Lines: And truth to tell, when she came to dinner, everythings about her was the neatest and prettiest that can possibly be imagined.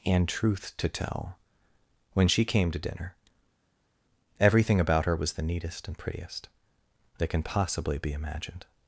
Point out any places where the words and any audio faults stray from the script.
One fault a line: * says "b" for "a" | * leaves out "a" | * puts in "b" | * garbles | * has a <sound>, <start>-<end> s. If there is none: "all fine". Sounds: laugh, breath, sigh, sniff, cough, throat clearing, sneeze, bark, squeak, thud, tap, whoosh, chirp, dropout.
* says "everything" for "everythings"